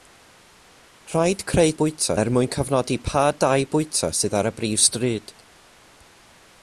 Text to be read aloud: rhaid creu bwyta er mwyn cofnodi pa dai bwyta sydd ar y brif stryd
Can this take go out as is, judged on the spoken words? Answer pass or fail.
pass